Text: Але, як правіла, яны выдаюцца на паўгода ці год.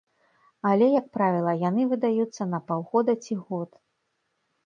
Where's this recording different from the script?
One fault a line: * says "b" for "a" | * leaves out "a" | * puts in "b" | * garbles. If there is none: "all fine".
all fine